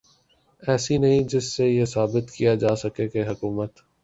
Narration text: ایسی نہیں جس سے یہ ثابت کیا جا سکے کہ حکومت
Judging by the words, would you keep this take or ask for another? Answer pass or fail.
pass